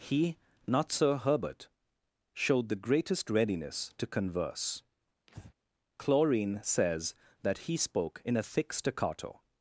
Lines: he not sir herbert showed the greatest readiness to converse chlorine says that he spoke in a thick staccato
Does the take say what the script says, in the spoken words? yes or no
yes